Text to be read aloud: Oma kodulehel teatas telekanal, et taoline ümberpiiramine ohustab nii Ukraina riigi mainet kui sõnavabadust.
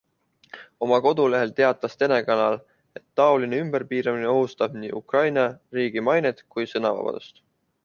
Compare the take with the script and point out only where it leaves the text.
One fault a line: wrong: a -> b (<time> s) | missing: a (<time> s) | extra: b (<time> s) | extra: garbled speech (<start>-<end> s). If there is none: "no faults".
no faults